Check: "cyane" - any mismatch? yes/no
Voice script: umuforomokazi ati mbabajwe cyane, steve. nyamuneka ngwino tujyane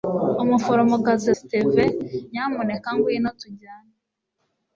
yes